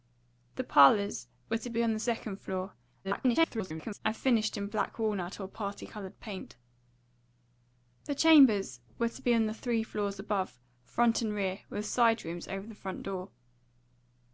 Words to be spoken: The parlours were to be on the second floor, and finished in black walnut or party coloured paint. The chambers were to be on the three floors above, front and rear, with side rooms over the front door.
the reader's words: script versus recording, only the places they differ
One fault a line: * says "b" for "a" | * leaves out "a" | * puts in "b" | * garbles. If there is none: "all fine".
* garbles